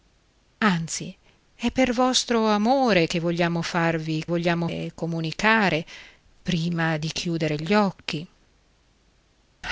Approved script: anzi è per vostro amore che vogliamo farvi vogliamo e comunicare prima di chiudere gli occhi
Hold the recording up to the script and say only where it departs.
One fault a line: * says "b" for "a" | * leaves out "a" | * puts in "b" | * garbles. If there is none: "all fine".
all fine